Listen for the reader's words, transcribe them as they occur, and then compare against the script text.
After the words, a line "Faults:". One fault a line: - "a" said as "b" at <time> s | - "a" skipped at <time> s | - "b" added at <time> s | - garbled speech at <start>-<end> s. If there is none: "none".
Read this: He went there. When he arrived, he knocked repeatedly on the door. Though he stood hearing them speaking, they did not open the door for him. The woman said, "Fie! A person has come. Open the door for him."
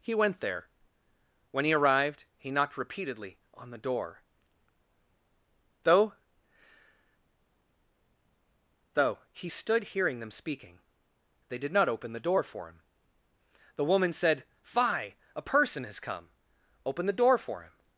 He went there. When he arrived, he knocked repeatedly on the door. Though Though he stood hearing them speaking, they did not open the door for him. The woman said, "Fie! A person has come. Open the door for him."
Faults:
- "Though" added at 8.9 s